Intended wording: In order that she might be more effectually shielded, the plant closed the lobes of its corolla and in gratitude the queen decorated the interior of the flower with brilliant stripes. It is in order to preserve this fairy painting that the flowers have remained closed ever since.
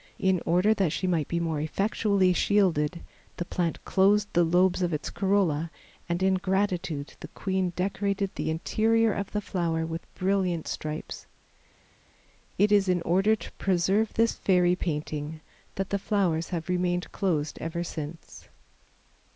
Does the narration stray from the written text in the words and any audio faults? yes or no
no